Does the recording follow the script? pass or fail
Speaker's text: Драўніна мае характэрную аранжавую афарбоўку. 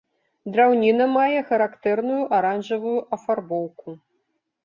pass